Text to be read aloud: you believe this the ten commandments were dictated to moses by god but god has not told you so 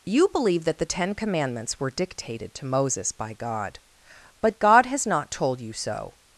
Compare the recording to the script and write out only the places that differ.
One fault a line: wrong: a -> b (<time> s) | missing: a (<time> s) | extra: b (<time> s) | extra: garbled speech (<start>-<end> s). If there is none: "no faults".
wrong: this -> that (0.6 s)